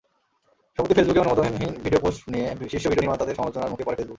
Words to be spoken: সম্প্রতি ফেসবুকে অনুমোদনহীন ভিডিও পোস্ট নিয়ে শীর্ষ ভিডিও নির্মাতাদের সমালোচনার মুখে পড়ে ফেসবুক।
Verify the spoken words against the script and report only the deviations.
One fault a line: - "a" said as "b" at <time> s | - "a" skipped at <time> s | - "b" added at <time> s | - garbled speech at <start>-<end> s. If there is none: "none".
none